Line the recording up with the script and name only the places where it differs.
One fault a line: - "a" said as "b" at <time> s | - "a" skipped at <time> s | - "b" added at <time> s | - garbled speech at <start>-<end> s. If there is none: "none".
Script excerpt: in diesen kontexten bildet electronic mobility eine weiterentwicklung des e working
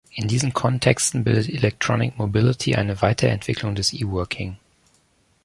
none